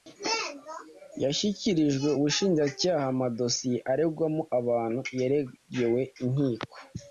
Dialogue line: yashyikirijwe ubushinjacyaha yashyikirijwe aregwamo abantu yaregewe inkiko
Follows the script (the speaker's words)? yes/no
no